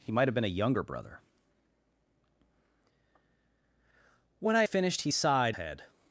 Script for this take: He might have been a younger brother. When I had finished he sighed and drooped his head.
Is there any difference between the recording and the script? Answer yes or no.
yes